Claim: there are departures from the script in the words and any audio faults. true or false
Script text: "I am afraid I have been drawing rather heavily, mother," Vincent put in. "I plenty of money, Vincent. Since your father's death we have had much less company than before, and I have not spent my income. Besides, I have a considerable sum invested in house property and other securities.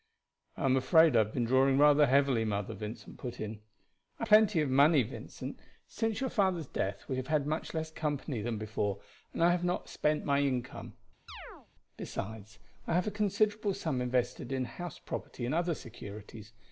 true